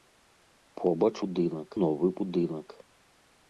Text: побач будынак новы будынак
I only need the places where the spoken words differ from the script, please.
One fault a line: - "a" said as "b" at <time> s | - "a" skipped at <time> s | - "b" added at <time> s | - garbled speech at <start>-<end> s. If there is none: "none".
none